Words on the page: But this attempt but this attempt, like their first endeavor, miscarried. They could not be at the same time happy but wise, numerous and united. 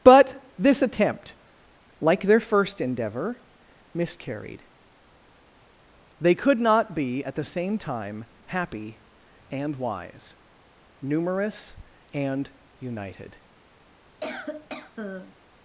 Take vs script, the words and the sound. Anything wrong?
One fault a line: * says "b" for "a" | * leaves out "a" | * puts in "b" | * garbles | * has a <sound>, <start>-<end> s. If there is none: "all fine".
* leaves out "but this attempt"
* says "and" for "but"
* has a cough, 14.2-15.4 s